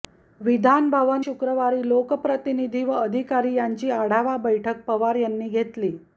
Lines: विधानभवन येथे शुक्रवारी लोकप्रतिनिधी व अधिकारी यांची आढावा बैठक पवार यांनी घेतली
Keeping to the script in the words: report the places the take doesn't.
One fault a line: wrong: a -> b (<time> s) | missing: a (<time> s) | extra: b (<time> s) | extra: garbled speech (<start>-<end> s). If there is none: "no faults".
missing: येथे (1.2 s)